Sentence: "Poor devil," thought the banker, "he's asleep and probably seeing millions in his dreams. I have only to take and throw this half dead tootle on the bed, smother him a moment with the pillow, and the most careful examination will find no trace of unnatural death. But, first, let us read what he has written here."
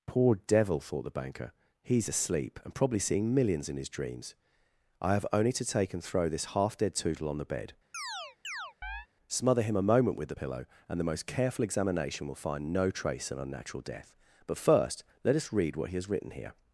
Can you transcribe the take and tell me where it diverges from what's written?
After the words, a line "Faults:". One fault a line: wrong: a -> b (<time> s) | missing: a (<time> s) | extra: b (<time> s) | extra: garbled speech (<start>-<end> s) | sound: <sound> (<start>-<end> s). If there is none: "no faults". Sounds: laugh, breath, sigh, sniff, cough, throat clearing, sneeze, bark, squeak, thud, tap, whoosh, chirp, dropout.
"Poor devil," thought the banker, "he's asleep and probably seeing millions in his dreams. I have only to take and throw this half dead tootle on the bed, smother him a moment with the pillow, and the most careful examination will find no trace of unnatural death. But, first, let us read what he has written here."
Faults:
sound: chirp (7.9-9.1 s)